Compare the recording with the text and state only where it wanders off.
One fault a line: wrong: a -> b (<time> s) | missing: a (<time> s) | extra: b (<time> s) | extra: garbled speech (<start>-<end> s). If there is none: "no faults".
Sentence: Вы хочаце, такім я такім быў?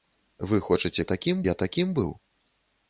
no faults